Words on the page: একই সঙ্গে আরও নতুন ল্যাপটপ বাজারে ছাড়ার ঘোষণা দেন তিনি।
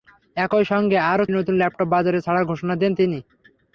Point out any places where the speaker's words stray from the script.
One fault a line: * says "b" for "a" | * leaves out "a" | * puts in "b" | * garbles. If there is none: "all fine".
all fine